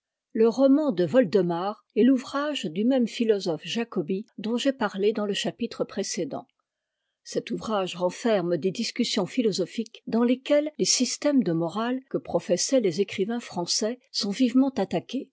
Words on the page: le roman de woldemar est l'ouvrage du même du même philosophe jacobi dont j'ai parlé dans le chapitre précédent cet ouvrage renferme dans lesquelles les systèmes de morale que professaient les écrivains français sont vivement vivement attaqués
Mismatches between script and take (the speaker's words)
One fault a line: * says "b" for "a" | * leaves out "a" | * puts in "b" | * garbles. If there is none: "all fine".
* leaves out "du même"
* puts in "des discussions philosophiques"
* leaves out "vivement"